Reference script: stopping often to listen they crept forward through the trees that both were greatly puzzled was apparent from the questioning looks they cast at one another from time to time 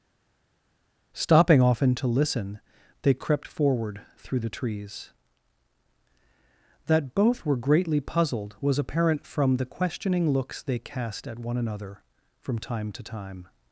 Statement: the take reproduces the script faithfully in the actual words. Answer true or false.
true